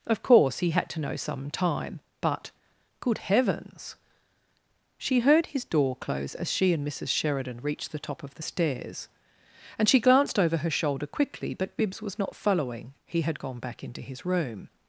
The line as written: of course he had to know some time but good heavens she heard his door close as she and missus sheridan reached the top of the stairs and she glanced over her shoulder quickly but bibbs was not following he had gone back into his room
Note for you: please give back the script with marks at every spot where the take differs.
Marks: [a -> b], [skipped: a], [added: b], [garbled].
of course he had to know some time but good heavens she heard his door close as she and missus sheridan reached the top of the stairs and she glanced over her shoulder quickly but bibbs was not following he had gone back into his room